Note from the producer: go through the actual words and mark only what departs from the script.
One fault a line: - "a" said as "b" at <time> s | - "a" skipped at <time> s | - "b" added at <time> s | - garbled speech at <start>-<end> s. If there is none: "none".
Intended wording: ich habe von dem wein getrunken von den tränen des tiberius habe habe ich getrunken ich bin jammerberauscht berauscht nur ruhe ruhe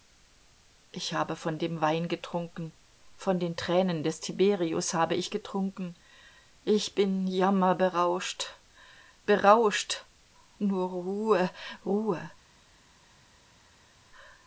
- "habe" skipped at 5.1 s